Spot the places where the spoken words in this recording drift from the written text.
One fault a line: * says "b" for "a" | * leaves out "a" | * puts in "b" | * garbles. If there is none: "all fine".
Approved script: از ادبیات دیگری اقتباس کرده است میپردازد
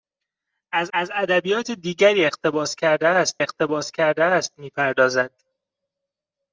* puts in "از"
* puts in "اقتباس کرده است"